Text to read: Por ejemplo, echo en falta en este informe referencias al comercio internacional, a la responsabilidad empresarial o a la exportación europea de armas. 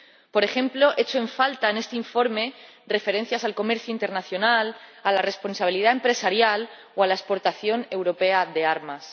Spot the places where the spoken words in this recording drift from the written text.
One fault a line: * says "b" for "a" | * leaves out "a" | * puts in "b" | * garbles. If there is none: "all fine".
all fine